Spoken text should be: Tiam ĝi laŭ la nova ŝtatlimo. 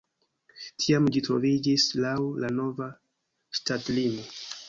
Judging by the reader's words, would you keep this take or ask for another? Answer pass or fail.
fail